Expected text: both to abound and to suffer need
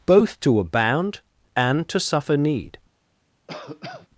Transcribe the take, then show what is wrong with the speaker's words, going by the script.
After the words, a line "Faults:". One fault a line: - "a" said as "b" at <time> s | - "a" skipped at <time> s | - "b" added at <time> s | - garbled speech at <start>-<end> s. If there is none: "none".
both to abound and to suffer need
Faults:
none